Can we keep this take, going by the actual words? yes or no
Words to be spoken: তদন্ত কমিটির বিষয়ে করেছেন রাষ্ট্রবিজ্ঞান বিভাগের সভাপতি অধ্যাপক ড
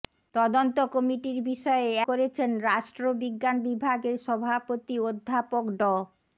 yes